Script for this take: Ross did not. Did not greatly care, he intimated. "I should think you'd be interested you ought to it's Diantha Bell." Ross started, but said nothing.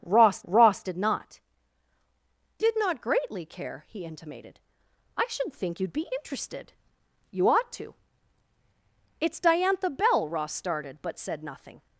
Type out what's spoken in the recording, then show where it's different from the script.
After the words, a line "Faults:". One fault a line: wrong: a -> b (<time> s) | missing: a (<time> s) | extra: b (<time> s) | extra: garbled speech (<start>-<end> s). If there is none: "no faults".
Ross ross did not. Did not greatly care, he intimated. "I should think you'd be interested you ought to it's Diantha Bell." Ross started, but said nothing.
Faults:
extra: ross (0.4 s)